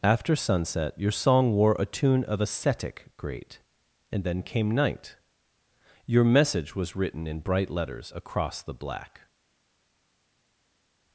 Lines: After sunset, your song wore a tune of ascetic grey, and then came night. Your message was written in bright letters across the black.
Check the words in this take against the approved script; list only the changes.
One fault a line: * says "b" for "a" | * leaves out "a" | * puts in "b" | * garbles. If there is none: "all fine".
* says "great" for "grey"